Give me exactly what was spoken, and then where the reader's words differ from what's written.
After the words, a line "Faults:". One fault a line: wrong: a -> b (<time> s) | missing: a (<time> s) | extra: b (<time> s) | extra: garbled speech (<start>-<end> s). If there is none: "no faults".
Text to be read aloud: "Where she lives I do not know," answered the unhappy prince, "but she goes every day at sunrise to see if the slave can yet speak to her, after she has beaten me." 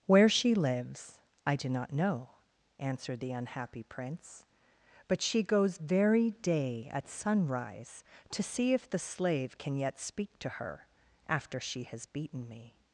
"Where she lives I do not know," answered the unhappy prince, "but she goes very day at sunrise to see if the slave can yet speak to her, after she has beaten me."
Faults:
wrong: every -> very (5.8 s)